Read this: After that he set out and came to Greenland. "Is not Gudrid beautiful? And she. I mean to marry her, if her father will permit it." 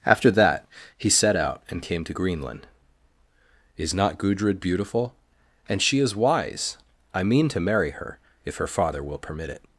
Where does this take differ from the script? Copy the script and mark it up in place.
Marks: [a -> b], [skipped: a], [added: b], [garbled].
After that he set out and came to Greenland. "Is not Gudrid beautiful? And she. [added: is wise] I mean to marry her, if her father will permit it."